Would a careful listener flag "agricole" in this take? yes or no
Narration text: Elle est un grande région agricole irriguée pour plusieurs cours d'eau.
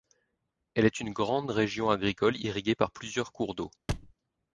no